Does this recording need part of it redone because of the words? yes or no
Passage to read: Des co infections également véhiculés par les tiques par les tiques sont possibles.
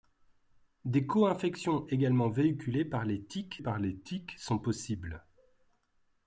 no